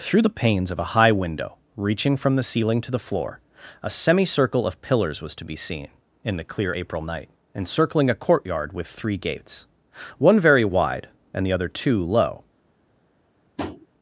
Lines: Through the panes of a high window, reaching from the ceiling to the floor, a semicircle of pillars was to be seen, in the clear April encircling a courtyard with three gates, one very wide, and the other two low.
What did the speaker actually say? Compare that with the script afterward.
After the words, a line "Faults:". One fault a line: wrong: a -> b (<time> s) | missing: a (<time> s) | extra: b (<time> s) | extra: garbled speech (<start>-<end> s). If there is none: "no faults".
Through the panes of a high window, reaching from the ceiling to the floor, a semicircle of pillars was to be seen, in the clear April night, encircling a courtyard with three gates, one very wide, and the other two low.
Faults:
extra: night (7.0 s)